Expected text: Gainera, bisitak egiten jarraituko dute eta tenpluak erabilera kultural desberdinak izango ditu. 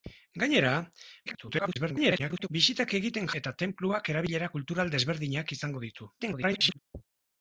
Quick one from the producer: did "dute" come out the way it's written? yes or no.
no